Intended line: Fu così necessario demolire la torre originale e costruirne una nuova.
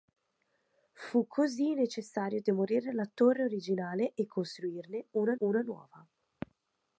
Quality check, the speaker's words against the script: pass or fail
fail